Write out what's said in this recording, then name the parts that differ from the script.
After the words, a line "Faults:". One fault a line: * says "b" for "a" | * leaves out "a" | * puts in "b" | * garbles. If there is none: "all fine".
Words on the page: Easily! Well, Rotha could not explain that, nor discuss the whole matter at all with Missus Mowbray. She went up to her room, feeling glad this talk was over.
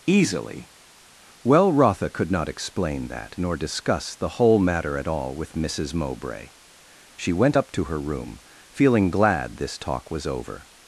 Easily! Well, Rotha could not explain that, nor discuss the whole matter at all with Missus Mowbray. She went up to her room, feeling glad this talk was over.
Faults:
all fine